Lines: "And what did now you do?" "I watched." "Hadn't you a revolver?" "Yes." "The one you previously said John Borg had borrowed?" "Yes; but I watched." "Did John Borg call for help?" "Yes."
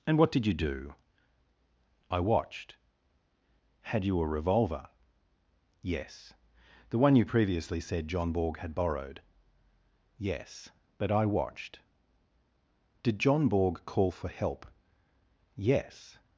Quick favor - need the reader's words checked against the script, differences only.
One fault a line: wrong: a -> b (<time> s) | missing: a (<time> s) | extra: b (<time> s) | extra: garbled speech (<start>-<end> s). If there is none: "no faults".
missing: now (0.5 s)
wrong: Hadn't -> Had (3.8 s)